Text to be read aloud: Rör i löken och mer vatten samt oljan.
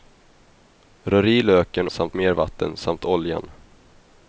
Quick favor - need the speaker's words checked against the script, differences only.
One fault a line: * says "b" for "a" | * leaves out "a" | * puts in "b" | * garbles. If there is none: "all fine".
* says "samt" for "och"